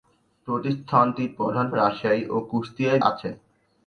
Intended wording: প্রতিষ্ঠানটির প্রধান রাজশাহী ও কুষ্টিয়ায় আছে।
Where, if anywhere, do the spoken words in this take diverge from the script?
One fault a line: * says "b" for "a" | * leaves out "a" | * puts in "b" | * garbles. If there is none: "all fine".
all fine